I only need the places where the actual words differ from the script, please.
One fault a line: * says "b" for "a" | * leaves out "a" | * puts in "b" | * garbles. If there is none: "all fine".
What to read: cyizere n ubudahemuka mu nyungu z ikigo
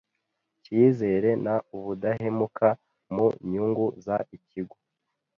all fine